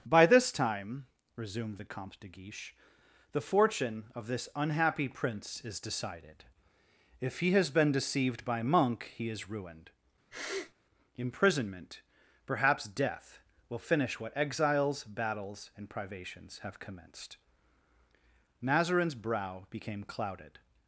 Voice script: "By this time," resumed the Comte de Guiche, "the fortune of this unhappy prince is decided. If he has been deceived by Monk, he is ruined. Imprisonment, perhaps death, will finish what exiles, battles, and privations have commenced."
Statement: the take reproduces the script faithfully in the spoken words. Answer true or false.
false